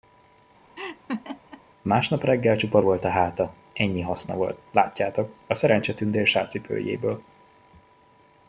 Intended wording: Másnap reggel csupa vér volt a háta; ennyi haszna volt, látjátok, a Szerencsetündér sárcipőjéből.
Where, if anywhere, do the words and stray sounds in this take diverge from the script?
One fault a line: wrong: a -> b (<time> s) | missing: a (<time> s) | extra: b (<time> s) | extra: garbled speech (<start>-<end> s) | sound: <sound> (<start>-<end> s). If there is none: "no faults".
sound: laugh (0.8-1.6 s)
missing: vér (2.8 s)